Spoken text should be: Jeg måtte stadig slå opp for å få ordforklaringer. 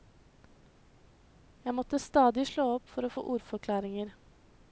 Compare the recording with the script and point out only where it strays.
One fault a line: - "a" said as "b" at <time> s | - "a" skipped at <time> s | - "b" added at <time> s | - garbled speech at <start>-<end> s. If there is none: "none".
none